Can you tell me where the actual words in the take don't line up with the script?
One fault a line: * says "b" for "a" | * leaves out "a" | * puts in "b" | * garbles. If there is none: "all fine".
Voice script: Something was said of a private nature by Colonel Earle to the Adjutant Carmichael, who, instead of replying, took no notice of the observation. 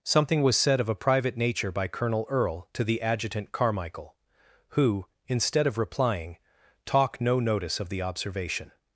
* says "talk" for "took"